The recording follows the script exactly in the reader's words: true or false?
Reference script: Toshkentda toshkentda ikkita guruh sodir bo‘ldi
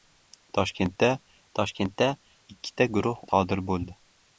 true